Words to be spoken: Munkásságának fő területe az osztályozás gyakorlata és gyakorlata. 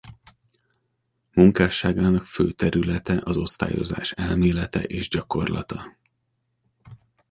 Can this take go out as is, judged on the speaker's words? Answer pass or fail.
fail